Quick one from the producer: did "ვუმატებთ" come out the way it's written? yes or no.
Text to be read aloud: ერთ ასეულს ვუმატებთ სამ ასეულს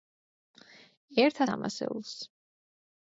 no